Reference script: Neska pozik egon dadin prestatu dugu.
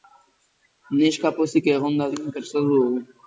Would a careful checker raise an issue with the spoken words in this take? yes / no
no